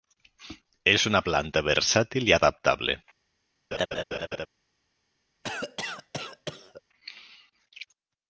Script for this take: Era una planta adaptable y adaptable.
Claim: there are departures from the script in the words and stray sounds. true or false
true